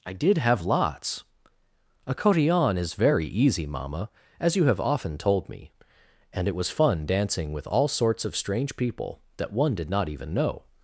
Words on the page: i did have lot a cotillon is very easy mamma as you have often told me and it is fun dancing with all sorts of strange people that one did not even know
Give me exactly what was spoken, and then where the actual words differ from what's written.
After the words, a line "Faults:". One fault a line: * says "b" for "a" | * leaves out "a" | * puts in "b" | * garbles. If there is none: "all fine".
i did have lots a cotillon is very easy mamma as you have often told me and it was fun dancing with all sorts of strange people that one did not even know
Faults:
* says "lots" for "lot"
* says "was" for "is"